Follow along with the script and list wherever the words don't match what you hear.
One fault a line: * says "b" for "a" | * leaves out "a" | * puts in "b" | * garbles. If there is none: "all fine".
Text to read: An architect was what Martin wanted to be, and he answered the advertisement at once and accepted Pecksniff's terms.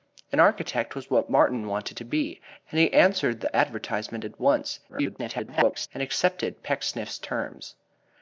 * garbles